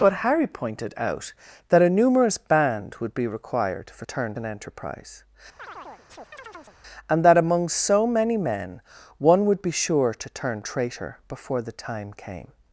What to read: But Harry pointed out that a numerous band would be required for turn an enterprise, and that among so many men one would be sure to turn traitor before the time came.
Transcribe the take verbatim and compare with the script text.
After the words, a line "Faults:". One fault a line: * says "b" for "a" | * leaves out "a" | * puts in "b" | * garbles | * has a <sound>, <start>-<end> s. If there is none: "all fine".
But Harry pointed out that a numerous band would be required for turn an enterprise, and that among so many men one would be sure to turn traitor before the time came.
Faults:
* has a chirp, 5.6-6.8 s